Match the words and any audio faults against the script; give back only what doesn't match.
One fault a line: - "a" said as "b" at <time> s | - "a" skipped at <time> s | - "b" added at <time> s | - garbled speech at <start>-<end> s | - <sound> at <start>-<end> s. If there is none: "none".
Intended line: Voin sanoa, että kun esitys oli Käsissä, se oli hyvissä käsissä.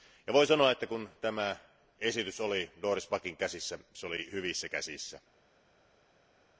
- "tämä" added at 1.2 s
- "Doris Packin" added at 2.8 s